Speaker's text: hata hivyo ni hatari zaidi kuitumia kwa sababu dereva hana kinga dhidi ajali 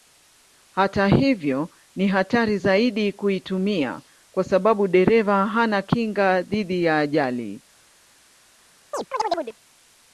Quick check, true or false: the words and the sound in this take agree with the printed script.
false